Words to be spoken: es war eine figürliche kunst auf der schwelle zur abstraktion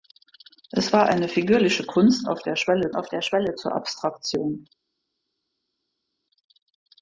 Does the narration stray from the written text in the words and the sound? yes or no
yes